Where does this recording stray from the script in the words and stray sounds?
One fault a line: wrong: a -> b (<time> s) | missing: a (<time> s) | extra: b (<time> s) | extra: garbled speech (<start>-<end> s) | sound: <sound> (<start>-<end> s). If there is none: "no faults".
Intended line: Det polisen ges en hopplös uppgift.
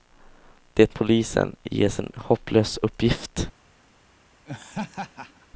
sound: laugh (4.5-5.5 s)